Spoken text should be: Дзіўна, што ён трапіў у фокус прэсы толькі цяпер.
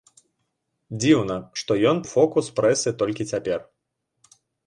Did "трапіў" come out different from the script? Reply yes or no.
yes